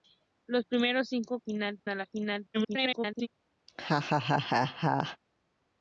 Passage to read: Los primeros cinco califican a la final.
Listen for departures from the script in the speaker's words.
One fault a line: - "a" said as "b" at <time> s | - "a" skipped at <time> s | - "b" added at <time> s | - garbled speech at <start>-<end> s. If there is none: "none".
- "califican" said as "final" at 1.4 s
- garbled speech at 2.5-3.3 s